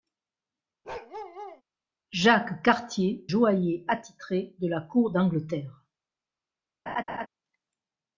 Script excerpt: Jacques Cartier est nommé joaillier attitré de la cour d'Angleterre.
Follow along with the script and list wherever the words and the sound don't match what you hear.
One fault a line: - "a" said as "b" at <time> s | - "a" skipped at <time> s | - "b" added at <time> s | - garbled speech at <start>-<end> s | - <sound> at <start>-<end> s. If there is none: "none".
- bark at 0.8-1.6 s
- "est nommé" skipped at 3.3 s
- laugh at 6.9-7.3 s